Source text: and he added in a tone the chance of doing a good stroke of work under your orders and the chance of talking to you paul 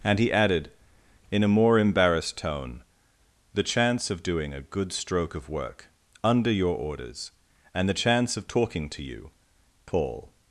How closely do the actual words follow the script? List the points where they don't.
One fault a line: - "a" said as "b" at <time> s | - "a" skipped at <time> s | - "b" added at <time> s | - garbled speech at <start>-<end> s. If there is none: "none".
- "more embarrassed" added at 1.5 s